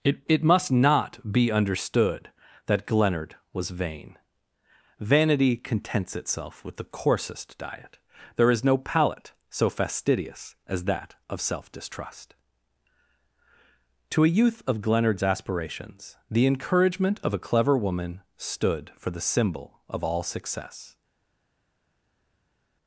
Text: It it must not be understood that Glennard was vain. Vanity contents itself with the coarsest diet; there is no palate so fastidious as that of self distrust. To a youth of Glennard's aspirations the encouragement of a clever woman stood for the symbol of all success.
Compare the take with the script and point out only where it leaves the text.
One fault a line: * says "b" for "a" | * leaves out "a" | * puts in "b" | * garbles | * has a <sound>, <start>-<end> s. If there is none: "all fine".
all fine